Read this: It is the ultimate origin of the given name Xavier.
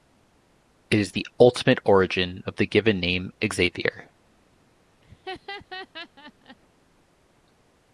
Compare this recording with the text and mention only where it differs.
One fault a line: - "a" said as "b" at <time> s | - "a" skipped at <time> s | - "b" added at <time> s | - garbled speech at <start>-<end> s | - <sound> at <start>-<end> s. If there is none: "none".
- laugh at 5.0-6.6 s